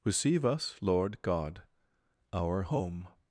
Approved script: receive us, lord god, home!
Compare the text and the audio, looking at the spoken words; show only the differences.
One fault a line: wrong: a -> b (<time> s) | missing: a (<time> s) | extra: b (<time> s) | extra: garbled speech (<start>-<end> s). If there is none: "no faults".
extra: our (2.3 s)